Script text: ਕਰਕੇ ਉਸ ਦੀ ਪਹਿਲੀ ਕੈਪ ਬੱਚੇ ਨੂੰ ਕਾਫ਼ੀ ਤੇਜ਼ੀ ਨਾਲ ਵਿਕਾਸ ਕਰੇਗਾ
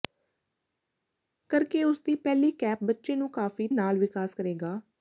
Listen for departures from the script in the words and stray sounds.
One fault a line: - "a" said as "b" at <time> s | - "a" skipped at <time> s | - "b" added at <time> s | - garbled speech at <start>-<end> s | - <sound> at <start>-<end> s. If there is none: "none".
- "ਤੇਜ਼ੀ" skipped at 3.7 s